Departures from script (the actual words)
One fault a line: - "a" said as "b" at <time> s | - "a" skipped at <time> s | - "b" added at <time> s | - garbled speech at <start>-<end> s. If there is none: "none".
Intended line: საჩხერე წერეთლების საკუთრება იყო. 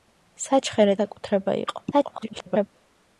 - "წერეთლების" skipped at 0.9 s
- garbled speech at 1.9-2.7 s